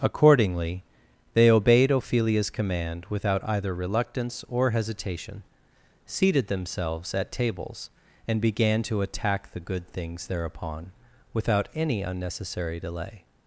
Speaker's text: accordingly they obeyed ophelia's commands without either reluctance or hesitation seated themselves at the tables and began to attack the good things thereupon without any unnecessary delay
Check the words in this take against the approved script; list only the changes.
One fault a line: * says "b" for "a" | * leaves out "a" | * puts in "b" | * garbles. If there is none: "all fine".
* says "command" for "commands"
* leaves out "the"